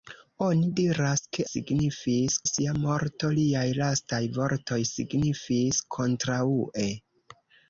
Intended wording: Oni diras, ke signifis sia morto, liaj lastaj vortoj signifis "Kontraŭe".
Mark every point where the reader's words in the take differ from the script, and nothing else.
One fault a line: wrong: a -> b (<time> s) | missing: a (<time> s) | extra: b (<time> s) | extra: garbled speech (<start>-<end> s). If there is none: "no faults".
no faults